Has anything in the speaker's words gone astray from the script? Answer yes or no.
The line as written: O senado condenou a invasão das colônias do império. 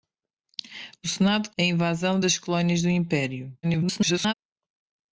yes